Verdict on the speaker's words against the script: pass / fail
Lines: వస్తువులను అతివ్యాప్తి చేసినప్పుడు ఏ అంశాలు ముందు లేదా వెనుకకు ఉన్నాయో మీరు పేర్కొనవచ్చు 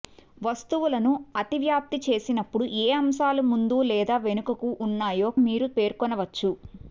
pass